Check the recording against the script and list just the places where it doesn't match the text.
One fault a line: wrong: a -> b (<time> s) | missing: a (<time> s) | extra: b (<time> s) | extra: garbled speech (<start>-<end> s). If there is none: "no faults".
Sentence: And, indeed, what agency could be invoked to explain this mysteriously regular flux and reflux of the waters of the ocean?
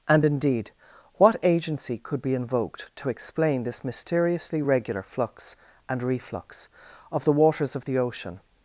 no faults